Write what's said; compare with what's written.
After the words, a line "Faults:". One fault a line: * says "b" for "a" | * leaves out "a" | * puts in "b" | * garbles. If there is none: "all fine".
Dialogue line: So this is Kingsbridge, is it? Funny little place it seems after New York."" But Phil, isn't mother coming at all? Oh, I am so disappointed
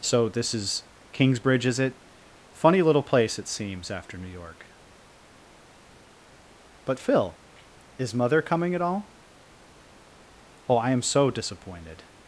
So this is Kingsbridge, is it? Funny little place it seems after New York."" But Phil, is mother coming at all? Oh, I am so disappointed
Faults:
* says "is" for "isn't"